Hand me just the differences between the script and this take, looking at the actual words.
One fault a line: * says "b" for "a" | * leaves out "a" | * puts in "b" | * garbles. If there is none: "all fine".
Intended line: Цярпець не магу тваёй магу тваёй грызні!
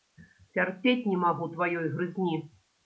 * leaves out "магу тваёй"